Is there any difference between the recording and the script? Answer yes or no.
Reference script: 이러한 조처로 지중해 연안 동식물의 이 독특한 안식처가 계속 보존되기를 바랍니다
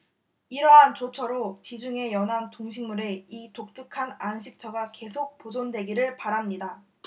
no